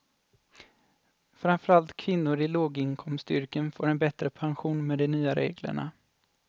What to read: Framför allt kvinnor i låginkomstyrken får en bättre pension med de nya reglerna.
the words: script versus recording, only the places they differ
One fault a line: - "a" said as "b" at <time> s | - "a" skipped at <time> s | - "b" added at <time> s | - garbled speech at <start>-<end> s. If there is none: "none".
none